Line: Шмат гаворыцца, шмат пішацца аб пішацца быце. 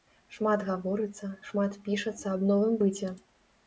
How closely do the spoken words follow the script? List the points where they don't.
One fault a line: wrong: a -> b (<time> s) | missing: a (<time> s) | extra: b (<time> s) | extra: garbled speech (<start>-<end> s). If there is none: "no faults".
wrong: пішацца -> новым (2.6 s)